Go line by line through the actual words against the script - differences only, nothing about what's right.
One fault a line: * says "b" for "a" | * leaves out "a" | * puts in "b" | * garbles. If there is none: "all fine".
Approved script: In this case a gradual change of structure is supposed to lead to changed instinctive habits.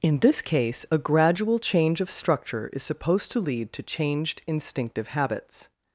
all fine